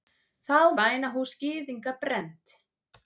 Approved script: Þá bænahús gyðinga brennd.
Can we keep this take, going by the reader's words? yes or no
yes